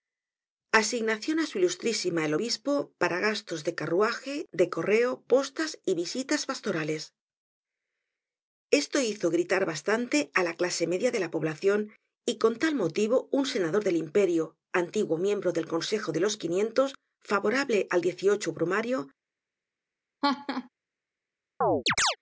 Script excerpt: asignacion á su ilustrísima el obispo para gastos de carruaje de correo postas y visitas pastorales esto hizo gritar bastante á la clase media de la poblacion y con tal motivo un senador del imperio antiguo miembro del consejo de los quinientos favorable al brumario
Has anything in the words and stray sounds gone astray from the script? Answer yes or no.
yes